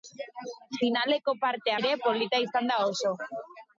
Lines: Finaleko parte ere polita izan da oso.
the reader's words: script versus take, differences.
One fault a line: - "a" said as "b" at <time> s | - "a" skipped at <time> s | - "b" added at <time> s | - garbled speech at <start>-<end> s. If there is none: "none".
none